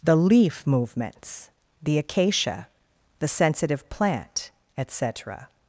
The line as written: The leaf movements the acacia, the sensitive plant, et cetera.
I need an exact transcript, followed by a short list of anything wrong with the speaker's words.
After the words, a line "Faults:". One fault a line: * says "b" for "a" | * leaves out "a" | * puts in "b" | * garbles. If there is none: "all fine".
The leaf movements the acacia, the sensitive plant, et cetera.
Faults:
all fine